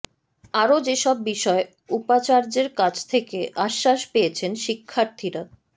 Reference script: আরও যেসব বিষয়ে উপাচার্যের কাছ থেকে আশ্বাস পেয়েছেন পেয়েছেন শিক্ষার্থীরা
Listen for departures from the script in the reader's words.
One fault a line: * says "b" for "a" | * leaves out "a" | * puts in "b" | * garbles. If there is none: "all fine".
* leaves out "পেয়েছেন"